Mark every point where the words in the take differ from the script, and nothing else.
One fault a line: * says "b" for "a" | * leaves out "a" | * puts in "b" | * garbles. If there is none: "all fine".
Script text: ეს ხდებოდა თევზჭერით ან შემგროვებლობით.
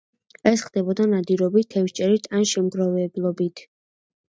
* puts in "ნადირობით"